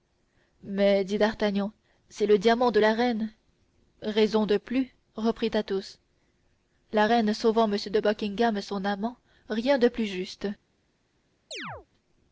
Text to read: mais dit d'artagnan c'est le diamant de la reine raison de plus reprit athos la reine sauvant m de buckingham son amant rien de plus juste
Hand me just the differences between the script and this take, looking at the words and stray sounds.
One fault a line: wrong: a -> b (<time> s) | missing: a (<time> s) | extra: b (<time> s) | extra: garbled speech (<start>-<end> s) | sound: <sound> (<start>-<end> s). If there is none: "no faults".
sound: chirp (11.5-11.9 s)